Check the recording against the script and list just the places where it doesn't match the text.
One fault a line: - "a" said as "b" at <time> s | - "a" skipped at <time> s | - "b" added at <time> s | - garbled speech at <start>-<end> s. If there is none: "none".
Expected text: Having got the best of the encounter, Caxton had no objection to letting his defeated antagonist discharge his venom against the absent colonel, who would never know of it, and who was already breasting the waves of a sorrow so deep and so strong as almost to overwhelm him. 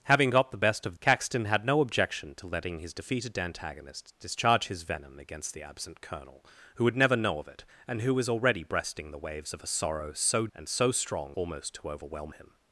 - "the encounter" skipped at 1.0 s
- "deep" skipped at 10.5 s
- "as" skipped at 11.4 s